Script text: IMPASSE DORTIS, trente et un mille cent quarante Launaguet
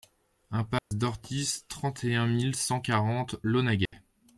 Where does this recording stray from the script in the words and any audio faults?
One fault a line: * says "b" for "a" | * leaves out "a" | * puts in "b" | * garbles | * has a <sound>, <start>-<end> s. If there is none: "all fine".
* has a dropout, 0.8-0.9 s
* has a dropout, 3.9-3.9 s